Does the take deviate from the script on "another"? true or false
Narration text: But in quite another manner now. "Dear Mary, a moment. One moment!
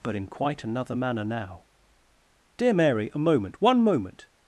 false